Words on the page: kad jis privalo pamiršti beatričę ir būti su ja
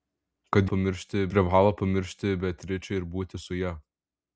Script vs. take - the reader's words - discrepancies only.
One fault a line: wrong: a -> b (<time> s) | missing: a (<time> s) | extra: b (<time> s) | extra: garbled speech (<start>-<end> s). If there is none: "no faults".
wrong: jis -> pamiršti (0.7 s)